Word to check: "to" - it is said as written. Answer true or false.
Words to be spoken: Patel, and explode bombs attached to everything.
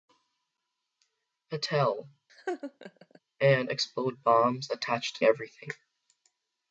true